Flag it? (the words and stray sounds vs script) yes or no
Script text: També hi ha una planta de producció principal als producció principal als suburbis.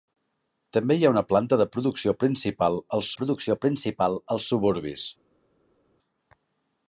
no